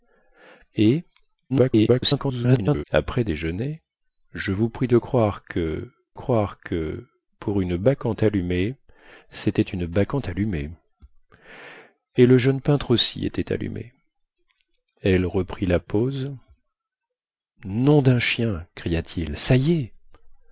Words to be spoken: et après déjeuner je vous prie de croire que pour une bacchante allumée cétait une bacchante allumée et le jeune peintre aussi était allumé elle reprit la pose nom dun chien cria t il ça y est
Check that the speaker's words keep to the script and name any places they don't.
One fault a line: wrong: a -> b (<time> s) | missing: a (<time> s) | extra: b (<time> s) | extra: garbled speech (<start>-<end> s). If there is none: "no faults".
extra: garbled speech (1.5-2.8 s)
extra: croire que (6.1 s)